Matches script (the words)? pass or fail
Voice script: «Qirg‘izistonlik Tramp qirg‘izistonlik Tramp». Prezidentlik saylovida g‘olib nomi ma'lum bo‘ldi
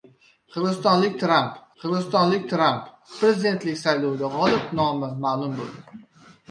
pass